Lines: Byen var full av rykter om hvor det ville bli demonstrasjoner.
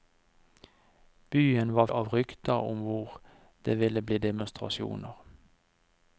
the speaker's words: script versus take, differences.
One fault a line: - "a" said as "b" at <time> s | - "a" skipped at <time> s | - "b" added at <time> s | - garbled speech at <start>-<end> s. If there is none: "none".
- "full" skipped at 1.9 s